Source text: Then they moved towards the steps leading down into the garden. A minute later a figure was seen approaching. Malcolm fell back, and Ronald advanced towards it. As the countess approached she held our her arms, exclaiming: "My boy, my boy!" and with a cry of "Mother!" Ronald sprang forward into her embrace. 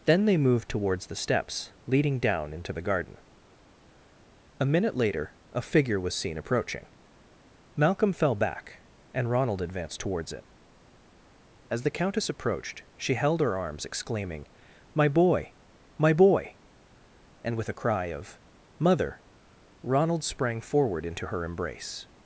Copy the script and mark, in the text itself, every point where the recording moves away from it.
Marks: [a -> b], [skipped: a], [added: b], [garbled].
Then they moved towards the steps leading down into the garden. A minute later a figure was seen approaching. Malcolm fell back, and Ronald advanced towards it. As the countess approached she held [skipped: our] her arms, exclaiming: "My boy, my boy!" and with a cry of "Mother!" Ronald sprang forward into her embrace.